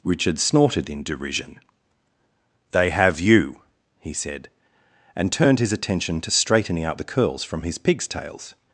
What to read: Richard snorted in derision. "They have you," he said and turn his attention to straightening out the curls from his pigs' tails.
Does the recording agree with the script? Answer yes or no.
no